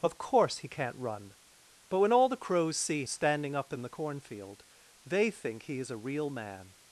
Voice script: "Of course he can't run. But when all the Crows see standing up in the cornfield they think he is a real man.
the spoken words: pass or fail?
pass